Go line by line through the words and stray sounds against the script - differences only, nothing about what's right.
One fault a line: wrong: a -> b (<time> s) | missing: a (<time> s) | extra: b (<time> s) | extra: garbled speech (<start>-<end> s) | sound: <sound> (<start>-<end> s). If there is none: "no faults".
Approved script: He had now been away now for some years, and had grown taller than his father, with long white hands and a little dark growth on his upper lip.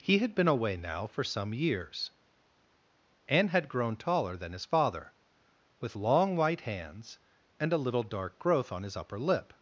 missing: now (0.3 s)